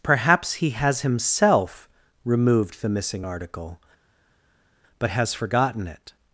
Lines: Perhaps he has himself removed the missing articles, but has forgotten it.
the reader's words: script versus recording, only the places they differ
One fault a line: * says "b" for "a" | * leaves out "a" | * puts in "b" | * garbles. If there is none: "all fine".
* says "article" for "articles"